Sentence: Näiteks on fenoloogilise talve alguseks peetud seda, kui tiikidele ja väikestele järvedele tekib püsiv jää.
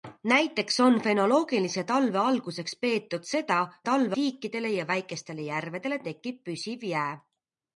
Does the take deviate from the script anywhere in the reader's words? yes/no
yes